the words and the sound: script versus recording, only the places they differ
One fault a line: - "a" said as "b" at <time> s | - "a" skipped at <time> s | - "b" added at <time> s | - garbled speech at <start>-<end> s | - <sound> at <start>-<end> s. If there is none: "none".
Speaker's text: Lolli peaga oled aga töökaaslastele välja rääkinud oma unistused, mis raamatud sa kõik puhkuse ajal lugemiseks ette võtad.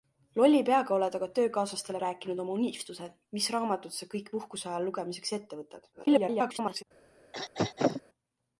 - "välja" skipped at 2.0 s
- garbled speech at 5.9-6.8 s
- throat clearing at 7.3-8.0 s